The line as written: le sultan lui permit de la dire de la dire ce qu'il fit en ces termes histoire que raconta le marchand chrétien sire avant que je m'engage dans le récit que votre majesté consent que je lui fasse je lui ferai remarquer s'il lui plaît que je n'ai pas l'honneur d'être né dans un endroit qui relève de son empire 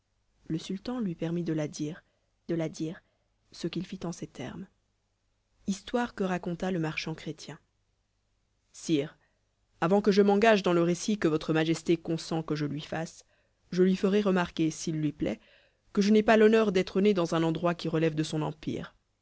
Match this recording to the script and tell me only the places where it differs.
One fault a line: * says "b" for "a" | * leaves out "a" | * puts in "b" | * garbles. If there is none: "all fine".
all fine